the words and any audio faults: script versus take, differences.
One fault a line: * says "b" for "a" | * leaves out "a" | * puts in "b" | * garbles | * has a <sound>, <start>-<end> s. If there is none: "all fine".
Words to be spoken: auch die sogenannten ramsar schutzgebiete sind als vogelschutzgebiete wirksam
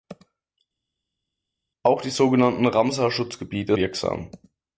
* leaves out "sind als vogelschutzgebiete"